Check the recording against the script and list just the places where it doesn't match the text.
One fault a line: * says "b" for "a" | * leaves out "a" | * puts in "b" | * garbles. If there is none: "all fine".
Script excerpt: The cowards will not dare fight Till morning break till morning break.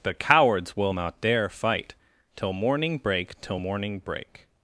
all fine